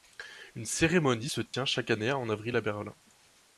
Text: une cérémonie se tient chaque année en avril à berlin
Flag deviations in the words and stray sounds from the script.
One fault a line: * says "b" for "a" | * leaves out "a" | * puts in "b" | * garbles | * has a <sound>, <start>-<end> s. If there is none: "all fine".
* has a dropout, 1.5-1.5 s